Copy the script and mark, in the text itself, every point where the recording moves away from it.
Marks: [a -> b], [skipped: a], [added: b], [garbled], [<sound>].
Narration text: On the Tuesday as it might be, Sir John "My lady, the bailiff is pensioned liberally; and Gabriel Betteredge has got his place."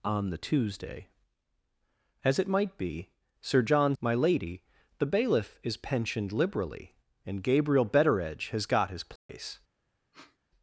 On the Tuesday as it might be, Sir John "My lady, the bailiff is pensioned liberally; and Gabriel Betteredge has got his place." [dropout] [sniff]